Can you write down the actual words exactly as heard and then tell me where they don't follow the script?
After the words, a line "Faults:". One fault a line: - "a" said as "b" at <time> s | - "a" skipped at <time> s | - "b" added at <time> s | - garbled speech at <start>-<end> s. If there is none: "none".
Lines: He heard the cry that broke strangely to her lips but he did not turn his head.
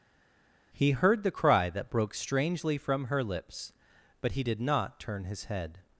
He heard the cry that broke strangely from her lips but he did not turn his head.
Faults:
- "to" said as "from" at 2.8 s